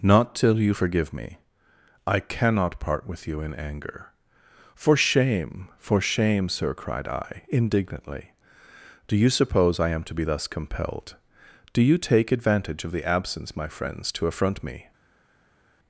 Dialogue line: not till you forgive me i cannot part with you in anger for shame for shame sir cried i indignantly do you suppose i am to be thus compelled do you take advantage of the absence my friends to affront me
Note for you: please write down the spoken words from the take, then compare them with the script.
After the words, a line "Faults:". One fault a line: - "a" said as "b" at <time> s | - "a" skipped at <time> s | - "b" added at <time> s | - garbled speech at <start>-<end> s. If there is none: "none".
not till you forgive me i cannot part with you in anger for shame for shame sir cried i indignantly do you suppose i am to be thus compelled do you take advantage of the absence my friends to affront me
Faults:
none